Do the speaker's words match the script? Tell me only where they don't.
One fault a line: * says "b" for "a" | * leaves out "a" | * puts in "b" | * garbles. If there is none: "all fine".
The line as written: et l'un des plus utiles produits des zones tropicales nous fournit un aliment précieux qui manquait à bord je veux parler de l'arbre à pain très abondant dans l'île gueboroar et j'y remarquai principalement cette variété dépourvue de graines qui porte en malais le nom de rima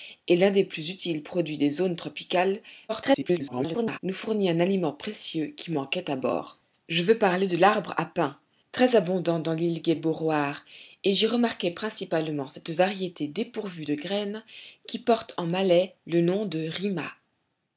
* garbles